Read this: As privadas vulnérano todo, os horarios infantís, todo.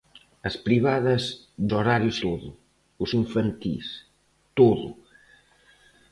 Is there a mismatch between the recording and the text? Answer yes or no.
yes